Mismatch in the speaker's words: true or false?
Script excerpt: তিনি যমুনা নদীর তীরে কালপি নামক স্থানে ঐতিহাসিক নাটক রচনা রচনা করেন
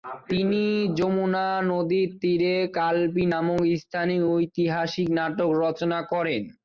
true